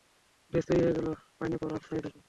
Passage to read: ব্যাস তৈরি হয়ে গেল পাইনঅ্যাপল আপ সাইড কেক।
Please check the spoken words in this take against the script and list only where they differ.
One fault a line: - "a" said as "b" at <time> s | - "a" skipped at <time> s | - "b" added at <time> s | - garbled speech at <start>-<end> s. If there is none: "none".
none